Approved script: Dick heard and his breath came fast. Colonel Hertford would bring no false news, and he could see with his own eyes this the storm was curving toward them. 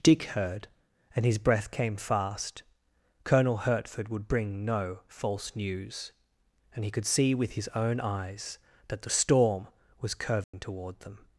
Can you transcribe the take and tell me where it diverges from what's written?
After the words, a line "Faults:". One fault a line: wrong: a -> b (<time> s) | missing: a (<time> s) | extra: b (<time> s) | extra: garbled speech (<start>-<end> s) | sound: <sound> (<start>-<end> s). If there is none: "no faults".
Dick heard and his breath came fast. Colonel Hertford would bring no false news, and he could see with his own eyes that the storm was curving toward them.
Faults:
wrong: this -> that (8.9 s)
sound: dropout (10.4-10.5 s)